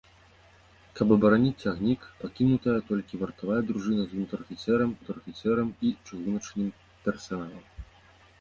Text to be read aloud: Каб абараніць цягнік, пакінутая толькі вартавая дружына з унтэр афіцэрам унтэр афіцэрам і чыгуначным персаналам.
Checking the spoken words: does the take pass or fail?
pass